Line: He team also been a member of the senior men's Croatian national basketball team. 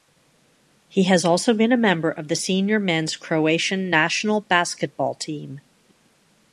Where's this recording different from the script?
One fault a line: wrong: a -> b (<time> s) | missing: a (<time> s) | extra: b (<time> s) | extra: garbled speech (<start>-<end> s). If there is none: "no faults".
wrong: team -> has (1.0 s)